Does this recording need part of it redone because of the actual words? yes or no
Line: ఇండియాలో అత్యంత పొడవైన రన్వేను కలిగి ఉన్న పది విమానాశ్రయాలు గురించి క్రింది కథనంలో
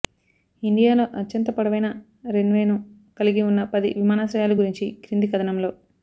no